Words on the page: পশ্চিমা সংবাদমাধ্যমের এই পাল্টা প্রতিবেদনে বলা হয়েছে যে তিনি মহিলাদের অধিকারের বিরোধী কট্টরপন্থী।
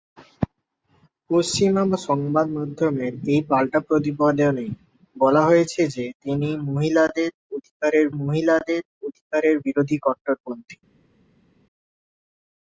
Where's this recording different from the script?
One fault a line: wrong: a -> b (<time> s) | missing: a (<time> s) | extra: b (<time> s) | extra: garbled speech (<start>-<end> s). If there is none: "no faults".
extra: মহিলাদের অধিকারের (8.2 s)